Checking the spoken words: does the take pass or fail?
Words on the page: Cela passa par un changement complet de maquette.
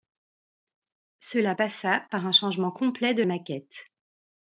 pass